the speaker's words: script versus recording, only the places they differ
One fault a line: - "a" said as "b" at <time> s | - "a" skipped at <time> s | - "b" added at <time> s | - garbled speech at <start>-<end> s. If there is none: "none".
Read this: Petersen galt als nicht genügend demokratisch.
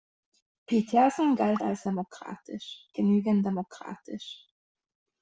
- "nicht" said as "demokratisch" at 1.9 s